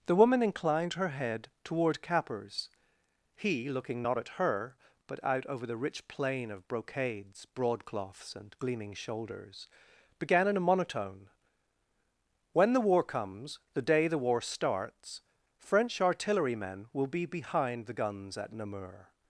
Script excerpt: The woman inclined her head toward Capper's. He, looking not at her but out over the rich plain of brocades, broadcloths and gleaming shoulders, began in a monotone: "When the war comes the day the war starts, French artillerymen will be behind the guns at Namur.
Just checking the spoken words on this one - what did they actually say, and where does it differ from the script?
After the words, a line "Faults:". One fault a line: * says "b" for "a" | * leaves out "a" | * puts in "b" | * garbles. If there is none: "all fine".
The woman inclined her head toward Capper's. He, looking not at her but out over the rich plain of brocades, broadcloths and gleaming shoulders, began in a monotone: "When the war comes the day the war starts, French artillerymen will be behind the guns at Namur.
Faults:
all fine